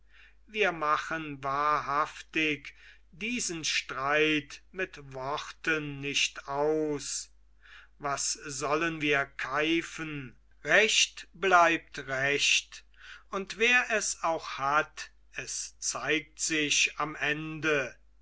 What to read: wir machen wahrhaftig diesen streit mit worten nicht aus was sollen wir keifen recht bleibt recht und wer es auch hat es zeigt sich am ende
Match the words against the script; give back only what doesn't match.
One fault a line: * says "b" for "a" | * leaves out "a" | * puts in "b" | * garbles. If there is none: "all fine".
all fine